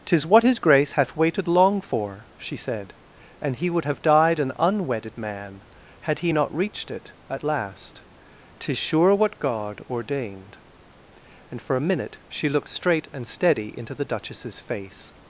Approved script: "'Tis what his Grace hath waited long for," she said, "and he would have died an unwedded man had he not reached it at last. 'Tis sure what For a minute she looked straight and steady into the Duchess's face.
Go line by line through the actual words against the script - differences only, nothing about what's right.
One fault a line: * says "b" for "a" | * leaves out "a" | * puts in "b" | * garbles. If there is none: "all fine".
* puts in "God ordained And"